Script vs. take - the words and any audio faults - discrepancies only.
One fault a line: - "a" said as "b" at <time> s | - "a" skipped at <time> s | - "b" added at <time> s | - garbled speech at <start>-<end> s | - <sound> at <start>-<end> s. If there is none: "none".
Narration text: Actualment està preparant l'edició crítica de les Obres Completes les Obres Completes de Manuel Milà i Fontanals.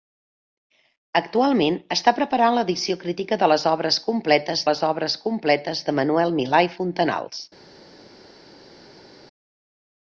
none